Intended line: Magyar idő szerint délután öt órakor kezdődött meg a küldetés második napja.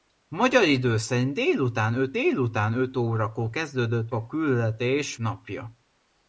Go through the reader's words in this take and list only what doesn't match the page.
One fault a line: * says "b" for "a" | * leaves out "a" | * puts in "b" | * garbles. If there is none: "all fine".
* puts in "délután öt"
* leaves out "meg"
* leaves out "második"